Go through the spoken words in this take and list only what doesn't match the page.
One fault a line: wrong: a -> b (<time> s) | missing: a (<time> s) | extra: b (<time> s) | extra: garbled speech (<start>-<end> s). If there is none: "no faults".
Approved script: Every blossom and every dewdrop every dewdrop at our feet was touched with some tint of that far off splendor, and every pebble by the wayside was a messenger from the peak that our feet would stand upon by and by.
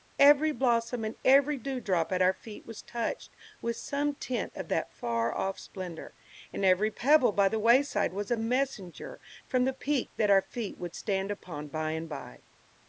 missing: every dewdrop (2.1 s)